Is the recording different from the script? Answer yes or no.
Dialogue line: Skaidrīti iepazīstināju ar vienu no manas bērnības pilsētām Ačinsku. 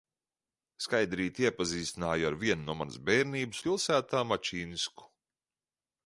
no